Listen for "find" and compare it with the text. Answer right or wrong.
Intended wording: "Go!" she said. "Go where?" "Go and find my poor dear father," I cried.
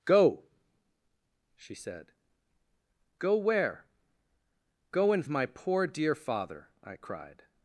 wrong